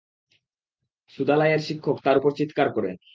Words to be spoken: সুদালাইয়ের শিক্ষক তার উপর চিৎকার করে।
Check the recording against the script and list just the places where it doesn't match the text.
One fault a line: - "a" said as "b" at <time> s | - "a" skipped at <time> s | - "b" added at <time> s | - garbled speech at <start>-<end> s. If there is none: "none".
none